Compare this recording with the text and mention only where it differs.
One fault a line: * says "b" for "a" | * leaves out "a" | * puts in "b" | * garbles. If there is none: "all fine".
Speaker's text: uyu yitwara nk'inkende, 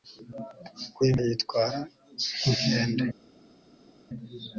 all fine